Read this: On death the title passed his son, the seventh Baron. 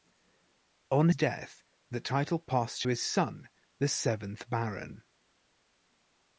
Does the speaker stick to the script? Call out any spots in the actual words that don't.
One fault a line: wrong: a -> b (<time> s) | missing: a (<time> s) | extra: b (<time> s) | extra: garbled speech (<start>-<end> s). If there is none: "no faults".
no faults